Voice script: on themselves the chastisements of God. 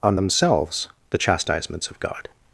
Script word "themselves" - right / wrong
right